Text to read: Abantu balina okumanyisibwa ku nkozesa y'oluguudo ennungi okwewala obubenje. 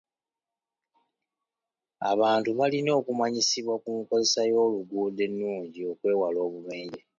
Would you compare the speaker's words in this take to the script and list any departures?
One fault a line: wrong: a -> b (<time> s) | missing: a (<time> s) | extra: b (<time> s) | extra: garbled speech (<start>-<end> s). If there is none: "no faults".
no faults